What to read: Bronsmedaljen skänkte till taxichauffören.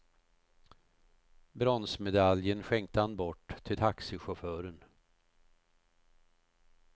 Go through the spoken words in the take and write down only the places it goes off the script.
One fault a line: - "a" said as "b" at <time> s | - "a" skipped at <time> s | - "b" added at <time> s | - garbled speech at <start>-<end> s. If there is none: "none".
- "han bort" added at 3.0 s